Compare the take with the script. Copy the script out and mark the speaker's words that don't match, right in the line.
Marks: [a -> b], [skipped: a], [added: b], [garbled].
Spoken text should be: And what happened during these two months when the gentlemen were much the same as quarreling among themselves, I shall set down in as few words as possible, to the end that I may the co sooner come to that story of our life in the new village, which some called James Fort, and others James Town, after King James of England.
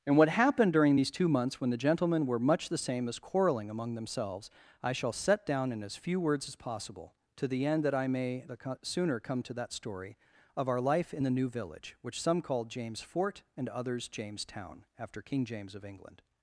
And what happened during these two months when the gentlemen were much the same as quarreling among themselves, I shall set down in as few words as possible, to the end that I may the co sooner come to that story of our life in the new village, which some called James Fort, and others James Town, after King James of England.